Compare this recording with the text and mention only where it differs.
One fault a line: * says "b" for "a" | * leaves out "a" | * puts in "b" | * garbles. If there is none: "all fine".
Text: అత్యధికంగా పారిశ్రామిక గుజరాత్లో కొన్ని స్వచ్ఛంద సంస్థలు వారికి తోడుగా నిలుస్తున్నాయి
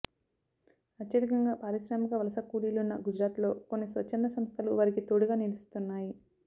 * puts in "వలస కూలీలున్న"